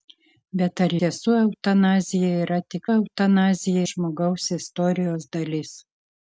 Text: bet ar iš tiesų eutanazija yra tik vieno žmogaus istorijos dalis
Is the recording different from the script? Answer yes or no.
yes